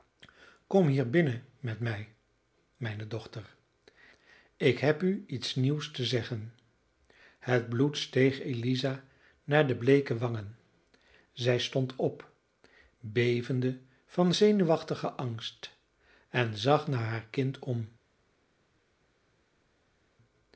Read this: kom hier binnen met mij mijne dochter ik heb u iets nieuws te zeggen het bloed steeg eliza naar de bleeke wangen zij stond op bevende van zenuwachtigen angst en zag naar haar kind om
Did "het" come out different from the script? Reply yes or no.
no